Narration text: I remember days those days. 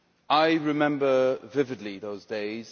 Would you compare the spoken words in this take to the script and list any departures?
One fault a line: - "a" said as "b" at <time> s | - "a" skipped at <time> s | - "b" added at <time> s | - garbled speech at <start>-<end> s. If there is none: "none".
- "days" said as "vividly" at 1.5 s